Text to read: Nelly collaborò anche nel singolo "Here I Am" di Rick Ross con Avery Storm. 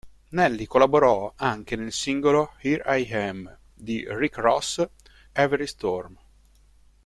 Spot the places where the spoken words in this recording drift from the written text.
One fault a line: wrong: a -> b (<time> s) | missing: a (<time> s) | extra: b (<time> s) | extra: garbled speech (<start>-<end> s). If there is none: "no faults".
missing: con (4.8 s)